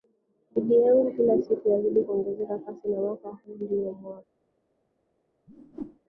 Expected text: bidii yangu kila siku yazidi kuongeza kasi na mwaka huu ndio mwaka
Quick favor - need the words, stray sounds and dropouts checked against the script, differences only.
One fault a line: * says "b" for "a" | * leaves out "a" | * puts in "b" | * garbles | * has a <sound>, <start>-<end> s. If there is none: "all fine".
* has a whoosh, 5.5-6.0 s